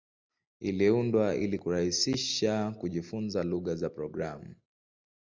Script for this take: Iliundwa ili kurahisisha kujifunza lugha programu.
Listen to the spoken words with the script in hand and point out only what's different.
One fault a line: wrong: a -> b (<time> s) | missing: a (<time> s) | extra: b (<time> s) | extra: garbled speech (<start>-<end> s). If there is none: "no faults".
extra: za (3.8 s)